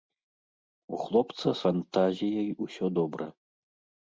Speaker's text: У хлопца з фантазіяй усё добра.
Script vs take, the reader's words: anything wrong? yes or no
no